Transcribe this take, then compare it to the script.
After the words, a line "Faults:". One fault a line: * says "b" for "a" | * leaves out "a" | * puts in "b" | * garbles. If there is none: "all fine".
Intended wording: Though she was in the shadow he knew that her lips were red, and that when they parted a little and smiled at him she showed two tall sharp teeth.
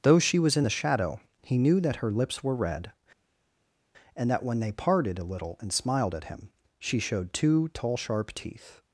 Though she was in the shadow he knew that her lips were red, and that when they parted a little and smiled at him she showed two tall sharp teeth.
Faults:
all fine